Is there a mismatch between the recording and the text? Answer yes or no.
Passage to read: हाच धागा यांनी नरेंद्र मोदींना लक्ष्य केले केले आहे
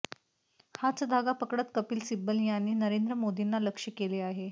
yes